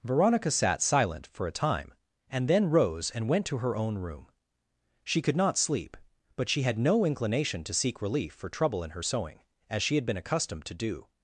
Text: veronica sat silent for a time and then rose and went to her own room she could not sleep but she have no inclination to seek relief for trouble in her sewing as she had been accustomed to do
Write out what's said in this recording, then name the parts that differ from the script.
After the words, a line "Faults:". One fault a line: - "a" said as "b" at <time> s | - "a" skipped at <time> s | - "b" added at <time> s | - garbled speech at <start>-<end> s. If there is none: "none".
veronica sat silent for a time and then rose and went to her own room she could not sleep but she had no inclination to seek relief for trouble in her sewing as she had been accustomed to do
Faults:
- "have" said as "had" at 6.6 s